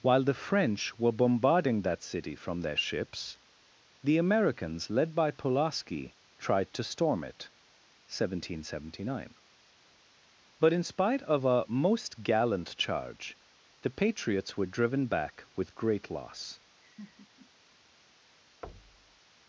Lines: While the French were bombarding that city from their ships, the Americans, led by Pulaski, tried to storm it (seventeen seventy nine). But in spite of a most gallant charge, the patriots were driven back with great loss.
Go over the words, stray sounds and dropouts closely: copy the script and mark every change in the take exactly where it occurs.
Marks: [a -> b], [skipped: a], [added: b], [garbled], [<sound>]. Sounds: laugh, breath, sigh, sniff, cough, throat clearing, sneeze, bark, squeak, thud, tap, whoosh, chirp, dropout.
While the French were bombarding that city from their ships, the Americans, led by Pulaski, tried to storm it (seventeen seventy nine). But in spite of a most gallant charge, the patriots were driven back with great loss. [laugh] [thud]